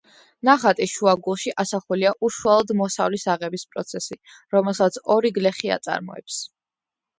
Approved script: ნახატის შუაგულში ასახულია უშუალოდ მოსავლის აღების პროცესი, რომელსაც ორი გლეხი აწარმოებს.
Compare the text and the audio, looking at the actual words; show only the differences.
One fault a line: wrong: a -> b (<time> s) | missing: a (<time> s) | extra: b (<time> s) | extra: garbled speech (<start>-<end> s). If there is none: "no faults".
no faults